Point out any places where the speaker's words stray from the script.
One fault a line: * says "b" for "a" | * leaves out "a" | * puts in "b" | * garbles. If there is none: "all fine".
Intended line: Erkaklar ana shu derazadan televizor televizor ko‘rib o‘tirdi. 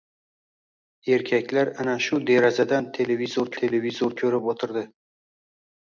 all fine